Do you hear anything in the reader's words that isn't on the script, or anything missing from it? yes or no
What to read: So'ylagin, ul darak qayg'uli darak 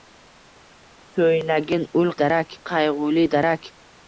no